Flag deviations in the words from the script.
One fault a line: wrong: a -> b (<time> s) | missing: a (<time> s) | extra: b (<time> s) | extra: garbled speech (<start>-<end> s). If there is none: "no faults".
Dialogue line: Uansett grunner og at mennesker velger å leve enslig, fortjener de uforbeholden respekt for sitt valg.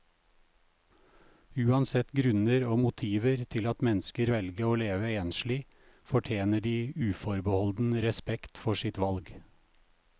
extra: motiver til (2.8 s)